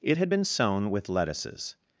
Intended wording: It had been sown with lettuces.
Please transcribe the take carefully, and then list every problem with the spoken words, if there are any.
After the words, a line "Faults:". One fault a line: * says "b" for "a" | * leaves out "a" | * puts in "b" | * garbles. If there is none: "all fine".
It had been sown with lettuces.
Faults:
all fine